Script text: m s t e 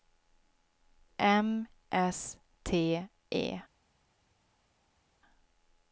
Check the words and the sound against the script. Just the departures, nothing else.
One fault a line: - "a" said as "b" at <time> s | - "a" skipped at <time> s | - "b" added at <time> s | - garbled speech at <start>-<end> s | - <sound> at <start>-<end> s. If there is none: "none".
none